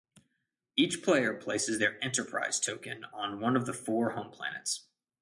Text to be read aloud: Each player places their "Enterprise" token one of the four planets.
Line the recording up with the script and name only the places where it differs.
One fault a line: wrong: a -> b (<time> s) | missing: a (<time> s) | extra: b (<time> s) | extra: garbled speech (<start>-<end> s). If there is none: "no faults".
extra: on (3.1 s)
extra: home (4.1 s)